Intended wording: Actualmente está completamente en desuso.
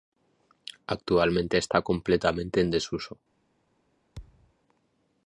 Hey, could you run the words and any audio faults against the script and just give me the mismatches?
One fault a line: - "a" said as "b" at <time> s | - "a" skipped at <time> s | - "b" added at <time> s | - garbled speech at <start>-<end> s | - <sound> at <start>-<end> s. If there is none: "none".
- thud at 4.2-4.5 s